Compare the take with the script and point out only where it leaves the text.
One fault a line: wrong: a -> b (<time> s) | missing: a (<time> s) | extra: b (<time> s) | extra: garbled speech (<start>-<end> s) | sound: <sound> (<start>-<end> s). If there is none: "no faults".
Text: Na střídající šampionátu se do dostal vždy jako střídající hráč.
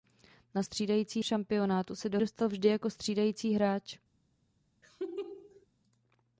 sound: laugh (4.8-5.7 s)